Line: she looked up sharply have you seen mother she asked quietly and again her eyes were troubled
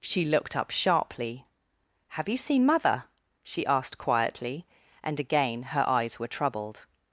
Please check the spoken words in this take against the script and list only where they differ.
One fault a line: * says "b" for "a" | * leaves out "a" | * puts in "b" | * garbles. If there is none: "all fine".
all fine